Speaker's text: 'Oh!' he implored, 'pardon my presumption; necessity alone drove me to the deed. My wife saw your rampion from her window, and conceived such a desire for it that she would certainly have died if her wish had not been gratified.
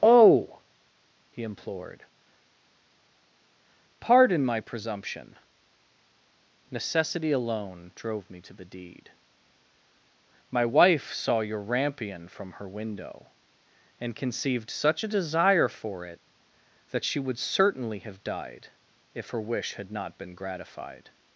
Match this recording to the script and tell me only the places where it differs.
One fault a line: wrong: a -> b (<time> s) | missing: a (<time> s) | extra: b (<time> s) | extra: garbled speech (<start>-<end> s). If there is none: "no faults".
no faults